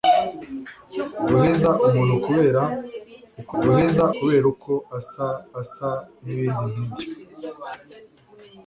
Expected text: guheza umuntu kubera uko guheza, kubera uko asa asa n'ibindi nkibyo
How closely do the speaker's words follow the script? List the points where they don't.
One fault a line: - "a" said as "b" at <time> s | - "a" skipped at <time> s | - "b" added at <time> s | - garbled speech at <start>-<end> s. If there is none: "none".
none